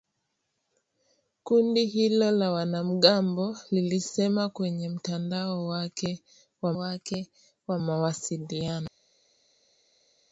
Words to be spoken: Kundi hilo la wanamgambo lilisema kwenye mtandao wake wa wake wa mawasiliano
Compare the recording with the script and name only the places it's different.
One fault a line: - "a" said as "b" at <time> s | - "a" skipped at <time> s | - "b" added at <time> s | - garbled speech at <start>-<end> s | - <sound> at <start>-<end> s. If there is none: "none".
none